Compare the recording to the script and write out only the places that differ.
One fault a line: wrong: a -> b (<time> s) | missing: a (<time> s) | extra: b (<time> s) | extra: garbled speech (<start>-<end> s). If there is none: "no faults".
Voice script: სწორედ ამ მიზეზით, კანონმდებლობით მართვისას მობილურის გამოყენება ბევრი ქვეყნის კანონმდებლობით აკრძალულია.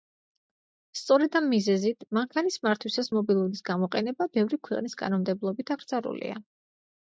wrong: კანონმდებლობით -> მანქანის (2.2 s)